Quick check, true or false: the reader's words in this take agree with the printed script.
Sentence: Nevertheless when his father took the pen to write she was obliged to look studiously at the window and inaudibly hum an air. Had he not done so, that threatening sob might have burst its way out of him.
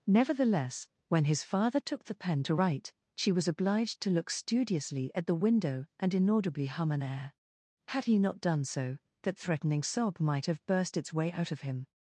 true